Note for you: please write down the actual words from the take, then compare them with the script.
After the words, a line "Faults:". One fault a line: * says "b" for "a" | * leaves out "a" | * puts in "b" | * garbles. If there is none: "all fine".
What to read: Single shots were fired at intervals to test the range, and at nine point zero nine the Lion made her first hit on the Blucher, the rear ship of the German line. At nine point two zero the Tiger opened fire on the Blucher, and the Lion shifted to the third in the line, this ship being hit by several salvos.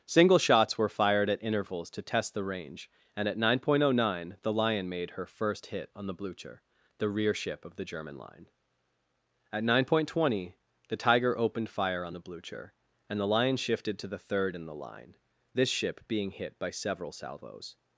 Single shots were fired at intervals to test the range, and at nine point zero nine the Lion made her first hit on the Blucher, the rear ship of the German line. At nine point two zero the Tiger opened fire on the Blucher, and the Lion shifted to the third in the line, this ship being hit by several salvos.
Faults:
all fine